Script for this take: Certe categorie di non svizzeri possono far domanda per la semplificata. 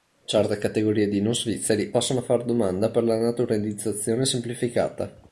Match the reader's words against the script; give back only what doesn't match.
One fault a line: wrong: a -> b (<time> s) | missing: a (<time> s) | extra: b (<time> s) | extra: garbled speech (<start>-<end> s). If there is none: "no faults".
extra: naturalizzazione (3.2 s)